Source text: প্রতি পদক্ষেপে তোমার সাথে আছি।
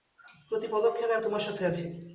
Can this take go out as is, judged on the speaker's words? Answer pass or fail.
pass